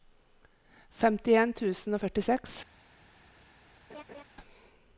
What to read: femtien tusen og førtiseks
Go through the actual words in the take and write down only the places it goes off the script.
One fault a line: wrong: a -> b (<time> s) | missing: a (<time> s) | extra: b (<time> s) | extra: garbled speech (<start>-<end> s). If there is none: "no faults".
no faults